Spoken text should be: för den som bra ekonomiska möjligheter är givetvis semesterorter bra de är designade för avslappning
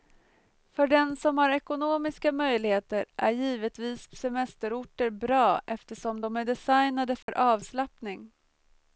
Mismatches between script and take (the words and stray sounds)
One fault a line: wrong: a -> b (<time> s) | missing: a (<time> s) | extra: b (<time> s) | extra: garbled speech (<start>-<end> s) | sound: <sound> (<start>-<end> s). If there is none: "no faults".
wrong: bra -> har (1.4 s)
extra: eftersom (5.7 s)
sound: dropout (7.2-7.3 s)